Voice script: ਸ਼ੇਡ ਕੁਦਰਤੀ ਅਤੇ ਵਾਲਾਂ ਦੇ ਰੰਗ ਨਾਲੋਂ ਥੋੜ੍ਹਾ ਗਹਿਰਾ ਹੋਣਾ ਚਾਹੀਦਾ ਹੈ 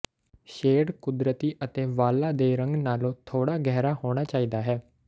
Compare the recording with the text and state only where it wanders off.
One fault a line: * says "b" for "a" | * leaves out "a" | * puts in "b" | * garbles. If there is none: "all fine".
all fine